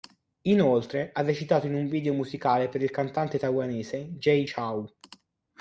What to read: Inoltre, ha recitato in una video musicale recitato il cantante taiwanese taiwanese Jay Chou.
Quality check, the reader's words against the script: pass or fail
fail